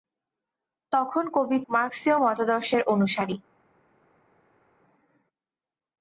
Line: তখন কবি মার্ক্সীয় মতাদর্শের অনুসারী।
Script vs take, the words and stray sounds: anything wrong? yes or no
no